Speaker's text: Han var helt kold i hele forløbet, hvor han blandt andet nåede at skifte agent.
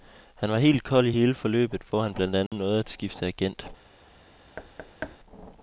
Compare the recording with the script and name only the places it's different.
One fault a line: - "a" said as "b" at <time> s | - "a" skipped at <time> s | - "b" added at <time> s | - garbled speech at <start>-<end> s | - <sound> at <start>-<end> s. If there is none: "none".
- dropout at 2.5-2.5 s
- thud at 4.6-5.2 s